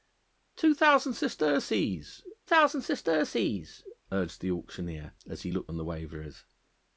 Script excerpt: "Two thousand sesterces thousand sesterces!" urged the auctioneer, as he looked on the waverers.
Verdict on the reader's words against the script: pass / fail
pass